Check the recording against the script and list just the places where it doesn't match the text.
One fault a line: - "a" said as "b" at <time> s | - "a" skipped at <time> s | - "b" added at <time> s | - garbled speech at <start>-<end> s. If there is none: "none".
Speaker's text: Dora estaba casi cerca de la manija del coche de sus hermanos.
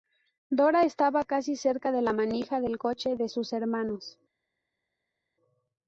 none